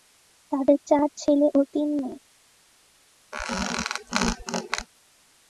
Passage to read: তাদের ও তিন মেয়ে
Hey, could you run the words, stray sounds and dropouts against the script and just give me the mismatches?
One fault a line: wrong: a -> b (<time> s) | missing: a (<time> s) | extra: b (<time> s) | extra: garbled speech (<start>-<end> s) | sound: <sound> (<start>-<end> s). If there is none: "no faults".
extra: চার ছেলে (0.9 s)
sound: squeak (3.3-4.9 s)